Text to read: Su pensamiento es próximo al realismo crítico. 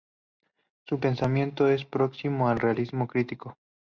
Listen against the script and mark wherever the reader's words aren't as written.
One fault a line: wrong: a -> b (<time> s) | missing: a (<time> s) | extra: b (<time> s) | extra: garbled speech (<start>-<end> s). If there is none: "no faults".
no faults